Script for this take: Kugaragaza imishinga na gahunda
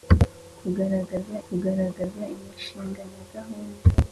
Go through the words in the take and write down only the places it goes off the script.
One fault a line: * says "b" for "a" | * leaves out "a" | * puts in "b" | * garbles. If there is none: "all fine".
* puts in "kugaragaza"